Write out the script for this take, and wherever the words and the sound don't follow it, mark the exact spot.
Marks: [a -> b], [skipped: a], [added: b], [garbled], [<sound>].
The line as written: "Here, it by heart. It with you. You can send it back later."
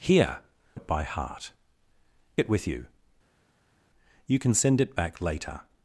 "Here, it by heart. It with you. You can send it back later."